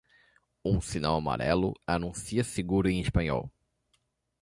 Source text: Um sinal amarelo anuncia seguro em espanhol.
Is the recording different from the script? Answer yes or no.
no